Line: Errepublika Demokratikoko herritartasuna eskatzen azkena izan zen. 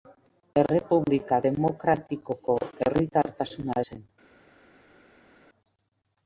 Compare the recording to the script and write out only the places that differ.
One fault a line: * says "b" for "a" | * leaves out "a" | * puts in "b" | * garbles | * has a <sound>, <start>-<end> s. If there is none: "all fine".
* leaves out "eskatzen azkena izan"